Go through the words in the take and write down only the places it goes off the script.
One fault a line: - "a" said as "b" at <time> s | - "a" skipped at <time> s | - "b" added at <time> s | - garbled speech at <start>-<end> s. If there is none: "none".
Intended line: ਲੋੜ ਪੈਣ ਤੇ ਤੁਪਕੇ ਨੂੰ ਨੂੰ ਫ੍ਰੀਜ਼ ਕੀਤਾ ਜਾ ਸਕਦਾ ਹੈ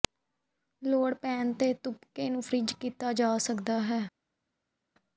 - "ਨੂੰ" skipped at 2.4 s